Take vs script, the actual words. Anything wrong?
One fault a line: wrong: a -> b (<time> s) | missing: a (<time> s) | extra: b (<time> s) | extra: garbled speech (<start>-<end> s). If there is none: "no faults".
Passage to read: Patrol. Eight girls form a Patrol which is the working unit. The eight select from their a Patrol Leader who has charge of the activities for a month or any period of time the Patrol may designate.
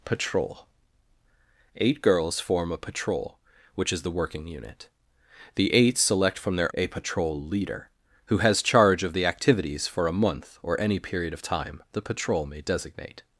no faults